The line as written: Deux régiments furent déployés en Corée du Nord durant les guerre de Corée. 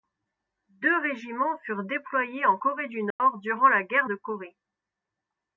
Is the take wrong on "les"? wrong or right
wrong